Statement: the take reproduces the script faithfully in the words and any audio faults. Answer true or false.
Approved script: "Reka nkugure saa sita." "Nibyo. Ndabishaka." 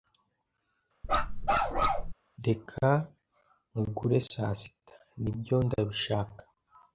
false